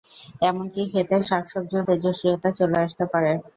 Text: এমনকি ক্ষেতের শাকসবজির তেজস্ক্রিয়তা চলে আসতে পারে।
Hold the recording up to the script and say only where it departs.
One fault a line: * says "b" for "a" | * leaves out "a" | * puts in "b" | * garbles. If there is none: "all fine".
all fine